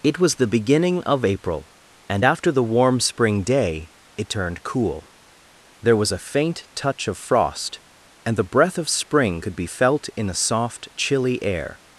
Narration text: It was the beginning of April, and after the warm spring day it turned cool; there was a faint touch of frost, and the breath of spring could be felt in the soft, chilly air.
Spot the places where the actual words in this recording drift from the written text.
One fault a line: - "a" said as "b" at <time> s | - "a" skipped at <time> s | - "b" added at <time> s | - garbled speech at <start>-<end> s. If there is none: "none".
none